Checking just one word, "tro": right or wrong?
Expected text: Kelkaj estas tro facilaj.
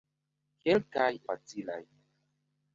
wrong